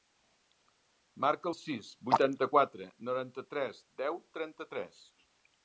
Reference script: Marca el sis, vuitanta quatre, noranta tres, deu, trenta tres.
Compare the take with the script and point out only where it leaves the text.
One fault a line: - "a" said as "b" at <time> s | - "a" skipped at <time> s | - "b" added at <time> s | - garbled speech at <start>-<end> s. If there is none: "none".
none